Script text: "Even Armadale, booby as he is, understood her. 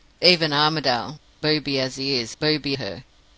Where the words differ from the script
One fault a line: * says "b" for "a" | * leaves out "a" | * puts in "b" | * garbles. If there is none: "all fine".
* says "booby" for "understood"